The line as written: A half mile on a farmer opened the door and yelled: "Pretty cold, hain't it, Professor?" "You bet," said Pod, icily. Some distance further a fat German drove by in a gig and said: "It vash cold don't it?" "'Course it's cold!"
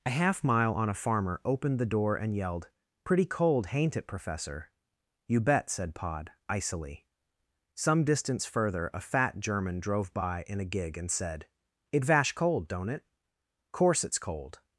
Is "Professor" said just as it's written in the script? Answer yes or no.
yes